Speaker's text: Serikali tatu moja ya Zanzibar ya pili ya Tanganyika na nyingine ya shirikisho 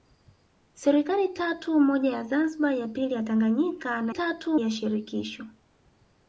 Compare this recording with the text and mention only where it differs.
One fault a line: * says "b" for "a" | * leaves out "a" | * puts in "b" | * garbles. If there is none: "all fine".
* says "tatu" for "nyingine"